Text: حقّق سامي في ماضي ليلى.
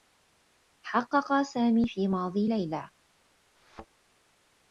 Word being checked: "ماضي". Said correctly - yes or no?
yes